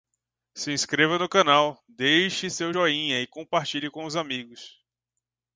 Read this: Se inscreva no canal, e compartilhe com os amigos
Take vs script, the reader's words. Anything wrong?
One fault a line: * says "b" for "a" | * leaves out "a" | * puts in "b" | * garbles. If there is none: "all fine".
* puts in "deixe seu joinha"